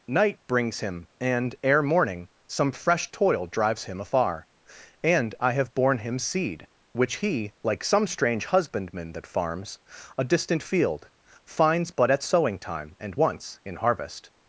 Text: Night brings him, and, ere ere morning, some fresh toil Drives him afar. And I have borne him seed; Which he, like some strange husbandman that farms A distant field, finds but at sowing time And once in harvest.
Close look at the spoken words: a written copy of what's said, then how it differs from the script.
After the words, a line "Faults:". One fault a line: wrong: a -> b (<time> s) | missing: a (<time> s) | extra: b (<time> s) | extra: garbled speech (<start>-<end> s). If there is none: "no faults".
Night brings him, and, ere morning, some fresh toil Drives him afar. And I have borne him seed; Which he, like some strange husbandman that farms A distant field, finds but at sowing time And once in harvest.
Faults:
missing: ere (1.8 s)